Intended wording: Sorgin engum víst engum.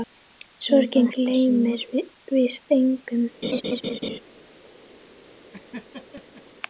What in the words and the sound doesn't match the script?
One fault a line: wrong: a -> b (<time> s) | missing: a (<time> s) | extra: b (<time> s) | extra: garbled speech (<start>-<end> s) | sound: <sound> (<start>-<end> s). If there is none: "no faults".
wrong: engum -> gleymir (1.1 s)
sound: laugh (3.4-4.2 s)
sound: laugh (5.5-6.4 s)